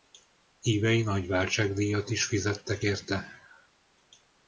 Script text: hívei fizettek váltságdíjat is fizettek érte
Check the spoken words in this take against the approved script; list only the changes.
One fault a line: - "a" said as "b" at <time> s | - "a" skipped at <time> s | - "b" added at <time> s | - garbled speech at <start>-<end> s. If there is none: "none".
- "fizettek" said as "nagy" at 1.0 s